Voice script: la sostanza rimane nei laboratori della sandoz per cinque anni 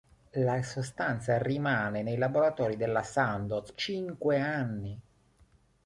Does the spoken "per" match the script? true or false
false